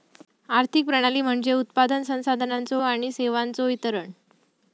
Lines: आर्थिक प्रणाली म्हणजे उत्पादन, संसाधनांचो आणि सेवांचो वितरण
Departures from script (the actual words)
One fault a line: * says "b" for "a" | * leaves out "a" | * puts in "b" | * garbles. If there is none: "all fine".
all fine